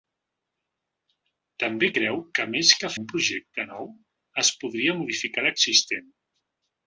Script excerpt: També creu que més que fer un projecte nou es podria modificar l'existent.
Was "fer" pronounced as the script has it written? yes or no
no